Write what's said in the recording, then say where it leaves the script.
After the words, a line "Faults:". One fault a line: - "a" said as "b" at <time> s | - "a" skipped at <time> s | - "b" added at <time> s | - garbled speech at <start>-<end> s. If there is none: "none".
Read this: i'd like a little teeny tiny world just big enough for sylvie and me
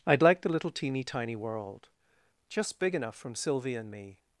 i'd like the little teeny tiny world just big enough from sylvie and me
Faults:
- "a" said as "the" at 0.4 s
- "for" said as "from" at 3.1 s